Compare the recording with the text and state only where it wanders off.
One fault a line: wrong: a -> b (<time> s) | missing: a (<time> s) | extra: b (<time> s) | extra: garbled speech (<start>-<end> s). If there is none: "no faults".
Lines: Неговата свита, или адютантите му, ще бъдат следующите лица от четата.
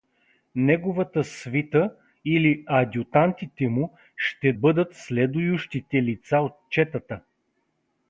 no faults